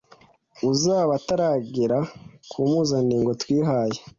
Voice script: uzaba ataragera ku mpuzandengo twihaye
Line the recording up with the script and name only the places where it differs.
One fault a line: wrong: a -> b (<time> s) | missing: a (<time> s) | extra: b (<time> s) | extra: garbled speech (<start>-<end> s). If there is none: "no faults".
no faults